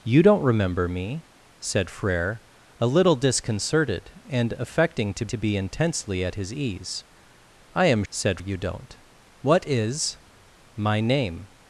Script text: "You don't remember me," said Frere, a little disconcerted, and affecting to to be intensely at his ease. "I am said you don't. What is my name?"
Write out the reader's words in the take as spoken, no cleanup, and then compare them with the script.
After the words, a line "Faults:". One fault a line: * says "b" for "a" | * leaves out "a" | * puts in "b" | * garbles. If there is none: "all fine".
"You don't remember me," said Frere, a little disconcerted, and affecting to to be intensely at his ease. "I am said you don't. What is my name?"
Faults:
all fine